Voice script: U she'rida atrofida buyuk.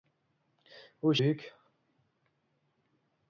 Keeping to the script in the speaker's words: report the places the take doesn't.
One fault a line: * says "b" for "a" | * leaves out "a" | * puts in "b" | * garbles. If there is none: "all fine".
* leaves out "she'rida atrofida"